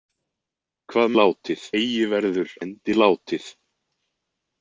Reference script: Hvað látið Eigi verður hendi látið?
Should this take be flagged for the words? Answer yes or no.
no